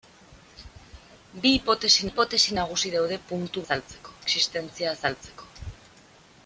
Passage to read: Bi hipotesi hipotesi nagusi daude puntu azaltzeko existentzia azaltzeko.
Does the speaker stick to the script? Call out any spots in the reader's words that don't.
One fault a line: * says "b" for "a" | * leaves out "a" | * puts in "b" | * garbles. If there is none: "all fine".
all fine